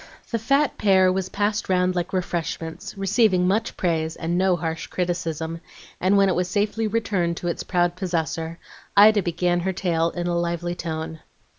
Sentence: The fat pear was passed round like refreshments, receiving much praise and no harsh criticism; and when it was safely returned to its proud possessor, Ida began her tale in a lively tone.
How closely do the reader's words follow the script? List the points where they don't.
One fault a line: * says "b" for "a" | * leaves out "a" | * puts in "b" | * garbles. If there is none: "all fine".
all fine